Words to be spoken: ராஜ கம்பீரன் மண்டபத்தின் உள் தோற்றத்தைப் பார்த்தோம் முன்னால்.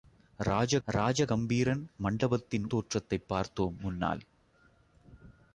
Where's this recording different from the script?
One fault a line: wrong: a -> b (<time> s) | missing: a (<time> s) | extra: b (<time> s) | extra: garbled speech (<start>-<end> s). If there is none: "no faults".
extra: ராஜ (0.9 s)
missing: உள் (2.7 s)